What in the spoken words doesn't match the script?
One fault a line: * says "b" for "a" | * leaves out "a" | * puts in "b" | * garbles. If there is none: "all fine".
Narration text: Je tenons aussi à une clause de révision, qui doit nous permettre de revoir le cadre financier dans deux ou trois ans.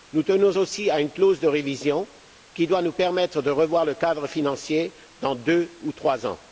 * says "Nous" for "Je"